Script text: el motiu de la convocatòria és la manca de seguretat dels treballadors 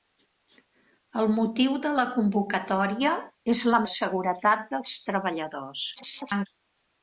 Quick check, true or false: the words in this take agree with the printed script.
false